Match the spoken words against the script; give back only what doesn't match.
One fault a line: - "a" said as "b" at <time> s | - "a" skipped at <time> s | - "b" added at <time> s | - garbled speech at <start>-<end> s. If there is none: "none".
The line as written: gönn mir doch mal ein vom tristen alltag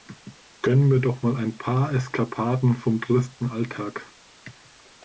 - "paar eskapaden" added at 1.6 s